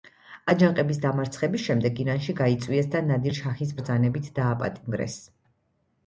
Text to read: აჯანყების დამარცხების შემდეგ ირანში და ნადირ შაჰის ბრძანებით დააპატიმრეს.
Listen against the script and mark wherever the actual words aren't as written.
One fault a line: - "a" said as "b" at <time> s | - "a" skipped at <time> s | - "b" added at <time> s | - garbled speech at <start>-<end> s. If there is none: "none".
- "გაიწვიეს" added at 2.4 s